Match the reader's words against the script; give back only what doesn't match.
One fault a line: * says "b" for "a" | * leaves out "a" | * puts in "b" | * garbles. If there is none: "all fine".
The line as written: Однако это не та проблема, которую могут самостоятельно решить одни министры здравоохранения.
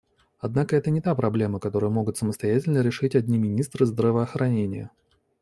all fine